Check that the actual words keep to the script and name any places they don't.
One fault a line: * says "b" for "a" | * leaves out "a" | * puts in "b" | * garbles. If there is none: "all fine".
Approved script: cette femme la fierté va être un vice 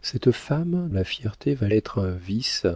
all fine